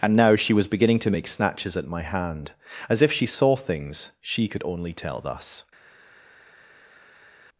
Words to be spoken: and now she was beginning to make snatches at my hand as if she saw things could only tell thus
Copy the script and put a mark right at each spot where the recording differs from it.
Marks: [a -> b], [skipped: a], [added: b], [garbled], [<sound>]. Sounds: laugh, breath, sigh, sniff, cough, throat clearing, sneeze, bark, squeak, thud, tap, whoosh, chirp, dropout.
and now she was beginning to make snatches at my hand as if she saw things [added: she] could only tell thus